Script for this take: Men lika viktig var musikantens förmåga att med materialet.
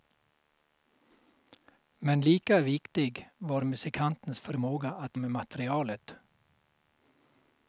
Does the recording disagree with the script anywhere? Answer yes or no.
no